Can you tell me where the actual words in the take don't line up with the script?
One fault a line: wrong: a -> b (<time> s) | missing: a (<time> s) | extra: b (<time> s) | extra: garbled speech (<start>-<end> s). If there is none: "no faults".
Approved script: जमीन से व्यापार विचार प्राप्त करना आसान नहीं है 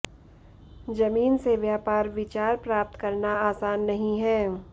no faults